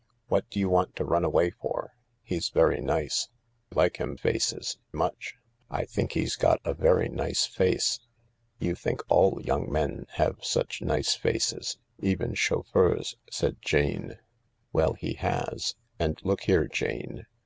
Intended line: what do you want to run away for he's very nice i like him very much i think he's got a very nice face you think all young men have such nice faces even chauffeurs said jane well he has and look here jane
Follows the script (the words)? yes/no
no